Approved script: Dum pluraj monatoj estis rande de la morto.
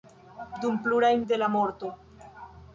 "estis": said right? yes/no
no